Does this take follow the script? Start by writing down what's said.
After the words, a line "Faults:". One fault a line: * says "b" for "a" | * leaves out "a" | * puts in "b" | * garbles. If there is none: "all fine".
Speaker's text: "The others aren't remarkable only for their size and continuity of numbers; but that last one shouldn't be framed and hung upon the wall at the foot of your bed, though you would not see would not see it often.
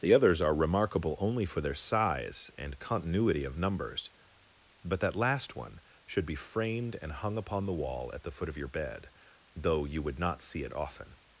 "The others are remarkable only for their size and continuity of numbers; but that last one should be framed and hung upon the wall at the foot of your bed, though you would not see it often.
Faults:
* says "are" for "aren't"
* says "should" for "shouldn't"
* leaves out "would not see"